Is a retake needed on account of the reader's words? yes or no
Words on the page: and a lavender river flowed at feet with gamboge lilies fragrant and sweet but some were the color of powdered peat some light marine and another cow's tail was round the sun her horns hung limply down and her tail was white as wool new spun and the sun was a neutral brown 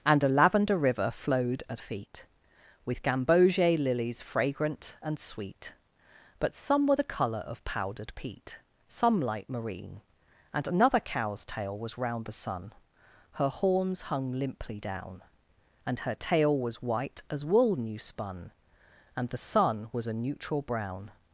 no